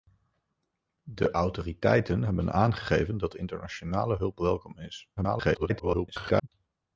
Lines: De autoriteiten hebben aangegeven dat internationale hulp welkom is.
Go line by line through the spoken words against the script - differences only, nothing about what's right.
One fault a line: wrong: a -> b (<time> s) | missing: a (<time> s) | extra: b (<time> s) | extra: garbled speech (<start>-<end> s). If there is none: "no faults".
extra: garbled speech (5.2-6.5 s)